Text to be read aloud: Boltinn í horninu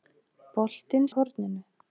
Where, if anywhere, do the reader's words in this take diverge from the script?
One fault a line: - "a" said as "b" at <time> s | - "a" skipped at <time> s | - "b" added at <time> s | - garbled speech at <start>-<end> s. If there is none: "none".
none